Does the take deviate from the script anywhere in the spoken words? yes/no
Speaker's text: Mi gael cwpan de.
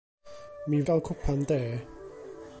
no